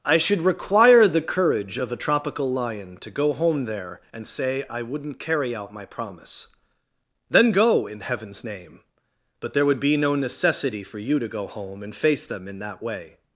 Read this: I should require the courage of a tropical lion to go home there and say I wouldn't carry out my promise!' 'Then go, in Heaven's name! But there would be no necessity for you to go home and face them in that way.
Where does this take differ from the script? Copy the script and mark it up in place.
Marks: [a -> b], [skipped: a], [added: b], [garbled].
I should require the courage of a tropical lion to go home there and say I wouldn't carry out my promise!' 'Then go, in Heaven's name! But there would be no necessity for you to go home and face them in that way.